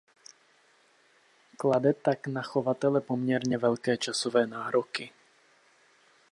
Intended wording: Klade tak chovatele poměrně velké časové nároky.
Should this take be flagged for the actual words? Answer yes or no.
yes